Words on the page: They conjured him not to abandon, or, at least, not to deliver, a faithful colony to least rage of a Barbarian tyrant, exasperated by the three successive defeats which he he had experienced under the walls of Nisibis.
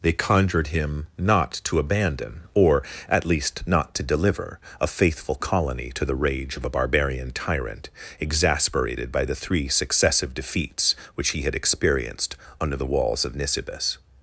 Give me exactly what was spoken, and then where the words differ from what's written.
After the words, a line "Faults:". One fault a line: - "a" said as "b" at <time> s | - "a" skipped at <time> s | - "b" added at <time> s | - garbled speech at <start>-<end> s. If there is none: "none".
They conjured him not to abandon, or, at least, not to deliver, a faithful colony to the rage of a Barbarian tyrant, exasperated by the three successive defeats which he had experienced under the walls of Nisibis.
Faults:
- "least" said as "the" at 6.0 s
- "he" skipped at 11.4 s